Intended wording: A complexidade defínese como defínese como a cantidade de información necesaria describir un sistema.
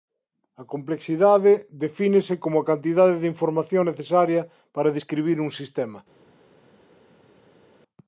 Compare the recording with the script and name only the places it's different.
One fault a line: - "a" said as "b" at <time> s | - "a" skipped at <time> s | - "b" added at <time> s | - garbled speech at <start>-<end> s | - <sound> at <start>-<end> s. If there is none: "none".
- "defínese como" skipped at 2.6 s
- "para" added at 4.7 s